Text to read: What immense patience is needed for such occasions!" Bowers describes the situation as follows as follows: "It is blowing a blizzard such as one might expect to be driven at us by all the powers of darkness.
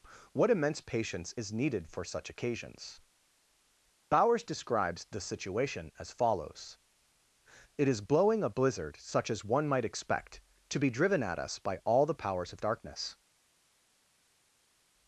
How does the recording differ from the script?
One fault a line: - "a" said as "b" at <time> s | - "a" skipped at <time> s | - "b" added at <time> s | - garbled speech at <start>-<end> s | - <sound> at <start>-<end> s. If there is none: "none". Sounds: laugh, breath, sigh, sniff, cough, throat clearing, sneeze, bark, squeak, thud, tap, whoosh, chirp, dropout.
- "as follows" skipped at 6.8 s